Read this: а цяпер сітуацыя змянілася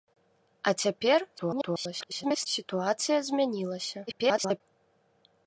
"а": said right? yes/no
yes